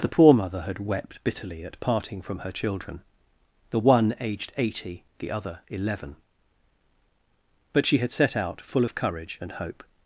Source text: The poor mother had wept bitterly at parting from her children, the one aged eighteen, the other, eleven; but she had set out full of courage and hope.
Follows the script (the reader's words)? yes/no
no